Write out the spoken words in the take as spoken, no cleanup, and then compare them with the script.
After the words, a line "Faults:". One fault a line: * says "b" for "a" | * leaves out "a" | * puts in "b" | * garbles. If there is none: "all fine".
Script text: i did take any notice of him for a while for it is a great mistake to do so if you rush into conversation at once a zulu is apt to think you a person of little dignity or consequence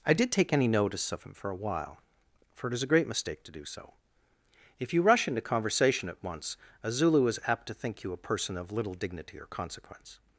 i did take any notice of him for a while for it is a great mistake to do so if you rush into conversation at once a zulu is apt to think you a person of little dignity or consequence
Faults:
all fine